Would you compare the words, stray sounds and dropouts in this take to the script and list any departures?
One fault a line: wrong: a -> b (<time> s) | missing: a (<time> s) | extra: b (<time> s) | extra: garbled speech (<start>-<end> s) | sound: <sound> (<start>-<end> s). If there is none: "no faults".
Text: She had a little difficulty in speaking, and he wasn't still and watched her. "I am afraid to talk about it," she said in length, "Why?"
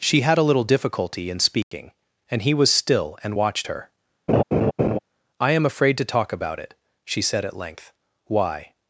sound: dropout (1.6-1.7 s)
wrong: wasn't -> was (2.5 s)
sound: laugh (4.3-5.0 s)
wrong: in -> at (7.4 s)